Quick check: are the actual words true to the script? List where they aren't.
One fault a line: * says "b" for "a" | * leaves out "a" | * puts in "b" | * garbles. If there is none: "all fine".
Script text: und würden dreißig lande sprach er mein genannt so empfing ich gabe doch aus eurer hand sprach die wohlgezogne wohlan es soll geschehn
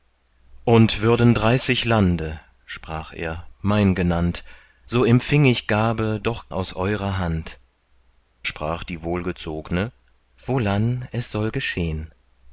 all fine